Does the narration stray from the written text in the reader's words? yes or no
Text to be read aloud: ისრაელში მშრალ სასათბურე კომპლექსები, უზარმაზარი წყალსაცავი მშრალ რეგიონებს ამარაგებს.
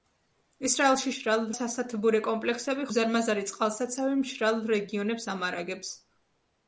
no